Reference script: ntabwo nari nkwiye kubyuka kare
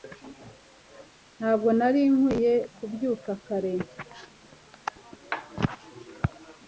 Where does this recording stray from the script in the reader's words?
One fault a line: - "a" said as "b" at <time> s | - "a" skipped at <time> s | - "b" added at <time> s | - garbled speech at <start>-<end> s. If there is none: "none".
none